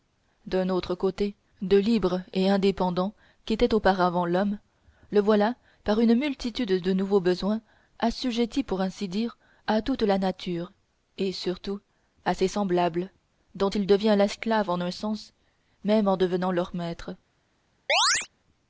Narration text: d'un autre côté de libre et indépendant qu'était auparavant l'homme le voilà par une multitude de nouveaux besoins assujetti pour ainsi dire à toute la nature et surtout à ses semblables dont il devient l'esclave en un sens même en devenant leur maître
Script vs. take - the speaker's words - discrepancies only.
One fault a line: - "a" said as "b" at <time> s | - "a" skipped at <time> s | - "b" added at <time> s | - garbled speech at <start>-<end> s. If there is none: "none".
none